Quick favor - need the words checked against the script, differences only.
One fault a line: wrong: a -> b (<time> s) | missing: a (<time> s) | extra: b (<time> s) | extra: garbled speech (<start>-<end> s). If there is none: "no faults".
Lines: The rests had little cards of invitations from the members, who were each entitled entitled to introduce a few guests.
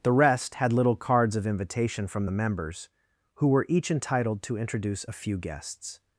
wrong: rests -> rest (0.1 s)
wrong: invitations -> invitation (1.4 s)
missing: entitled (4.4 s)